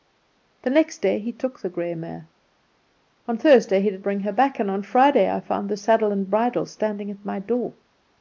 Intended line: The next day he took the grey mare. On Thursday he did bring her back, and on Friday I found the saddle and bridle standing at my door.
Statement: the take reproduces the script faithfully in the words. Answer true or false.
true